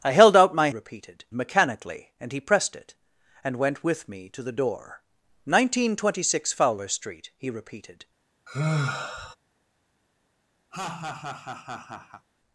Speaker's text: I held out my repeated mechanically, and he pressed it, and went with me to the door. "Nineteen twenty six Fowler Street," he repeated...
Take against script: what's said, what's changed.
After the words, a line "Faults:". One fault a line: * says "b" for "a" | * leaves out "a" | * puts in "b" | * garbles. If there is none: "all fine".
I held out my repeated mechanically, and he pressed it, and went with me to the door. "Nineteen twenty six Fowler Street," he repeated...
Faults:
all fine